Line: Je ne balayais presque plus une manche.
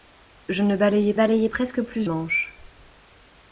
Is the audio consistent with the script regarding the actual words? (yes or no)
no